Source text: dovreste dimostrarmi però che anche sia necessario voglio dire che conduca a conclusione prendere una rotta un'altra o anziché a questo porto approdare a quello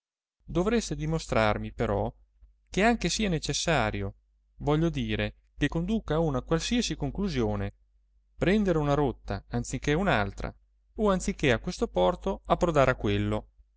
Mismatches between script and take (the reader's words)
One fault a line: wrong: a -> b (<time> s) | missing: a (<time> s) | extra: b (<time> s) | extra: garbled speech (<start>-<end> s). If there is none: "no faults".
extra: una qualsiasi (6.2 s)
extra: anziché (9.5 s)